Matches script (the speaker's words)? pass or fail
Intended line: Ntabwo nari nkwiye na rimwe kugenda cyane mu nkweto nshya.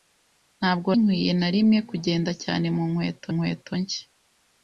fail